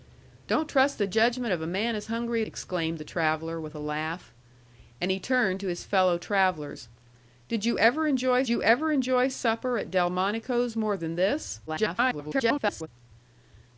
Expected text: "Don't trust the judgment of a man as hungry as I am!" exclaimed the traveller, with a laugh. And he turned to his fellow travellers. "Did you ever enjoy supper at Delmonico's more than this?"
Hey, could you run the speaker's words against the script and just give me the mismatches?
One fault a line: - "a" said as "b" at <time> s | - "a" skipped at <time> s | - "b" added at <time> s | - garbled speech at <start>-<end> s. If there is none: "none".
- "as I am" skipped at 2.4 s
- "you ever enjoy" added at 8.5 s
- garbled speech at 11.7-12.9 s